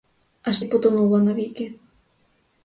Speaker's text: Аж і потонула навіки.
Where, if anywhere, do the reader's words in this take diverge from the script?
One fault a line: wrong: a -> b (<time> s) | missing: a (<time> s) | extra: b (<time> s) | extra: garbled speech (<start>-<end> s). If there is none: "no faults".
no faults